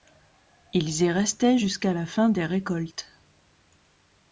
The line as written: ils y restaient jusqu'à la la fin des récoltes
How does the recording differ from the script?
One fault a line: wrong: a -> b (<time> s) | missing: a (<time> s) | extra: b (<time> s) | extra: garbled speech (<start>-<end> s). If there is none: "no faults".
missing: la (2.0 s)